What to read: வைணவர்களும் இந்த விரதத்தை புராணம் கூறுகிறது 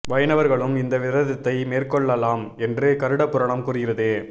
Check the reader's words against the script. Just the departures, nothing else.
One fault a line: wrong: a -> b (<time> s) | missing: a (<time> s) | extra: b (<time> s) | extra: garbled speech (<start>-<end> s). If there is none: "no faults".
extra: மேற்கொள்ளலாம் என்று கருட (1.6 s)